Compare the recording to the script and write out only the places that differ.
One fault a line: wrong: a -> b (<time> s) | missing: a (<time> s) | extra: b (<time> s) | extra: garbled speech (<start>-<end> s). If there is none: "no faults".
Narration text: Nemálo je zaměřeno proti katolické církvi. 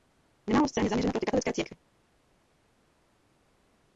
extra: scén (0.7 s)